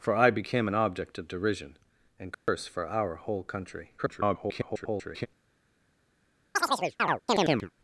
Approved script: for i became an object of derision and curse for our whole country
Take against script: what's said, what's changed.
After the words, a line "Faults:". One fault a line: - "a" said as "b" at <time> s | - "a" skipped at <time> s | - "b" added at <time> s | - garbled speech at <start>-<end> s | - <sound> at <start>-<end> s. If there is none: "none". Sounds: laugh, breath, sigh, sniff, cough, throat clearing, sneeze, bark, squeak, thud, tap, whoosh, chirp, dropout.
for i became an object of derision and curse for our whole country [garbled]
Faults:
- dropout at 2.3-2.5 s
- garbled speech at 4.0-5.3 s
- chirp at 6.5-7.7 s